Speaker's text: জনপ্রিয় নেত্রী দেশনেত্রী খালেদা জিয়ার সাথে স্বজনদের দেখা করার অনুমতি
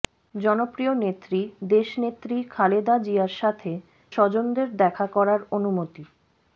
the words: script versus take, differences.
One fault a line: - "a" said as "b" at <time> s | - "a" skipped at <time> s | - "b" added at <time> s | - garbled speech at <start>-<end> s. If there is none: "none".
none